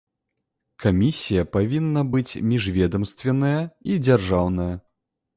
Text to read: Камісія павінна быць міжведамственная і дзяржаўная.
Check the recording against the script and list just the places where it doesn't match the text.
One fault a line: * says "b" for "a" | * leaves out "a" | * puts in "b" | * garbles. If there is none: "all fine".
all fine